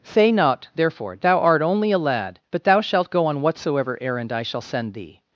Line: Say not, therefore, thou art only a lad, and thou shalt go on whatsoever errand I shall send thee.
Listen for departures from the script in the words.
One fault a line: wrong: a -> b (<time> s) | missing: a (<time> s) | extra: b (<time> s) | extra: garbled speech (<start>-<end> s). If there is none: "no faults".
wrong: and -> but (2.5 s)